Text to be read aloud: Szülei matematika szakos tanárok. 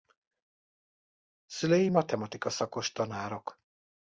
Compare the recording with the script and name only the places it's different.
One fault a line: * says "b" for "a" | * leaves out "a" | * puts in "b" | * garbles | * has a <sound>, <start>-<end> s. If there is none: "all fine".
all fine